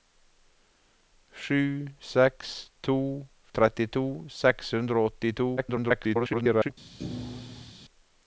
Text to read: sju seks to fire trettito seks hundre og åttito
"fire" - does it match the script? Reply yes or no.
no